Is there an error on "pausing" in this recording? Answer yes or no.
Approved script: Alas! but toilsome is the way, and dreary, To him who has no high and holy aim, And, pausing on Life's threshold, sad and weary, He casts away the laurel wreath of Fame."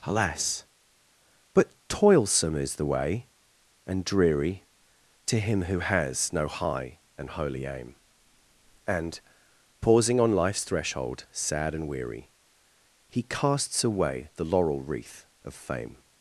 no